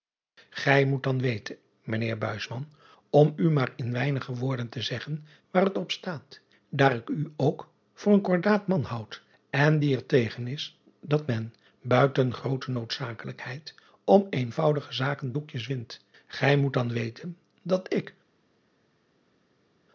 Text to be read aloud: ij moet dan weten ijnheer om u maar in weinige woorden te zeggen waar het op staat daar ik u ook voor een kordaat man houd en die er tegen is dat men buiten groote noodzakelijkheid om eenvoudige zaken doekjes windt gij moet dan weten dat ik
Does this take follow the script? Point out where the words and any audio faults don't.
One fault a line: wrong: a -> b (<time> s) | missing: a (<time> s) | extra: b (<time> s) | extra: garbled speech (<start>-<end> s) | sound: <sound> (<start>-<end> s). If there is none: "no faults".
no faults